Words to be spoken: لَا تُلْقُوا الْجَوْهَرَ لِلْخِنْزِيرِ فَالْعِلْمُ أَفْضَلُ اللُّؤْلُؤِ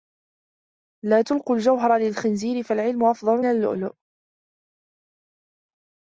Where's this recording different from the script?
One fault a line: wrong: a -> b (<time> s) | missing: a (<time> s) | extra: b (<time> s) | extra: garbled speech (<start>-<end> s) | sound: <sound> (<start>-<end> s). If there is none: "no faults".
no faults